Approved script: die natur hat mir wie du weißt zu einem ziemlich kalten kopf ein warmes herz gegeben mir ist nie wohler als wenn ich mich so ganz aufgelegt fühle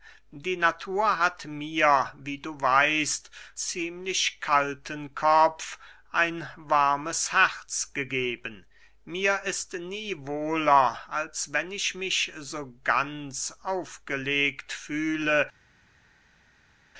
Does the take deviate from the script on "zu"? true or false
true